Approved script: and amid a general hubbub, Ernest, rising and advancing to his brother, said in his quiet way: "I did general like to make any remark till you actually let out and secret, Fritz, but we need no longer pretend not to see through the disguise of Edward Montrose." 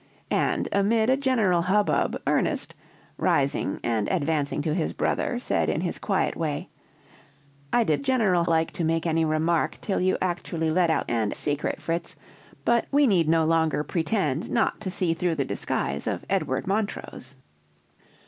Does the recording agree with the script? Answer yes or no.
yes